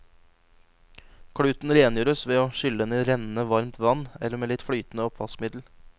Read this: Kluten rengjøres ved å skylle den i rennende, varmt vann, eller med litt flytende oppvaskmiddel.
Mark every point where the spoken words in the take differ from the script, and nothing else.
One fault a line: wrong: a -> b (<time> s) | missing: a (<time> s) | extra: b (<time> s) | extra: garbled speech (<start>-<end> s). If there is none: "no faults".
no faults